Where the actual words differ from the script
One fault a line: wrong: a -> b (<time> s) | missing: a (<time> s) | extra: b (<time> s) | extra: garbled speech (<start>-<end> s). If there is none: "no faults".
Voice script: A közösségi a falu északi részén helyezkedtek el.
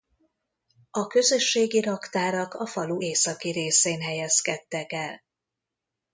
extra: raktárak (1.8 s)